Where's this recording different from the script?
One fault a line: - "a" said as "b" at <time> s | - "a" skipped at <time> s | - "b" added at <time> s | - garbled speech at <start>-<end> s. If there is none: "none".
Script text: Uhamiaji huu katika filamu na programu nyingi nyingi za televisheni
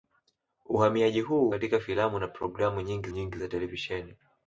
none